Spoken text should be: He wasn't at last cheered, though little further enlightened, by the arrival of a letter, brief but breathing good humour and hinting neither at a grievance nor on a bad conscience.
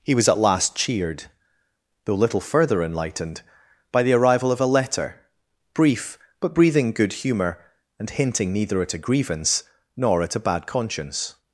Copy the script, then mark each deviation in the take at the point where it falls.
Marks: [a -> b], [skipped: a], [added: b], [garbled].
He [wasn't -> was] at last cheered, though little further enlightened, by the arrival of a letter, brief but breathing good humour and hinting neither at a grievance nor [on -> at] a bad conscience.